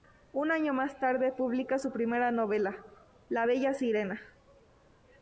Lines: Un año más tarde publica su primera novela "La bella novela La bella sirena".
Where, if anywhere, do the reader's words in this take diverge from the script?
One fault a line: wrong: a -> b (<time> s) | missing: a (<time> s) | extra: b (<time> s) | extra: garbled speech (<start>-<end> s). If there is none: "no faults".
missing: novela La bella (3.7 s)